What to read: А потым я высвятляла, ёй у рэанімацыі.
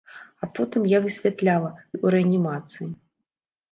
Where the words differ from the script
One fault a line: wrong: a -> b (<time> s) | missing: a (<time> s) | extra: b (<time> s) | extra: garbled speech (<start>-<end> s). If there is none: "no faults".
no faults